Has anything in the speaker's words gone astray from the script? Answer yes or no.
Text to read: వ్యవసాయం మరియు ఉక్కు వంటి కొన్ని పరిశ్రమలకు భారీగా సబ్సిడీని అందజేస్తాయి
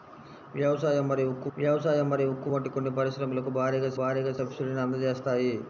yes